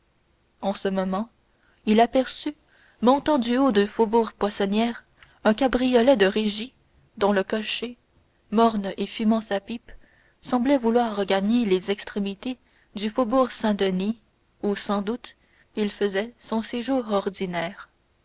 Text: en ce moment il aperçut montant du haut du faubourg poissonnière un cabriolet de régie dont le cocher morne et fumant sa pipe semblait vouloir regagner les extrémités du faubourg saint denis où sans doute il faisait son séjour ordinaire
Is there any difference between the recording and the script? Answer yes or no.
no